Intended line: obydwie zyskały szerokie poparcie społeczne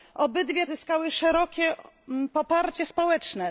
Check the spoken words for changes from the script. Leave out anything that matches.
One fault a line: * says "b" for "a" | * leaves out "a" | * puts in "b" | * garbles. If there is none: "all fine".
all fine